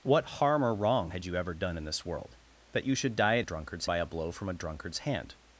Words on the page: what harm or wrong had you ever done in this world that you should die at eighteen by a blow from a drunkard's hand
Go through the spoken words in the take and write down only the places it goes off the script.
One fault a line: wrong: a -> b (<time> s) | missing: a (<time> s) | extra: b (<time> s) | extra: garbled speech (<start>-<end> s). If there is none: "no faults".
wrong: eighteen -> drunkard's (3.4 s)